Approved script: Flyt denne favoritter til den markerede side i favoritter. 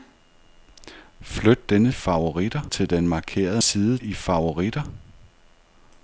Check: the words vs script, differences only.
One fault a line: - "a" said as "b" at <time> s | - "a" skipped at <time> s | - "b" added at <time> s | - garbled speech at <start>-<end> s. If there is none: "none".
none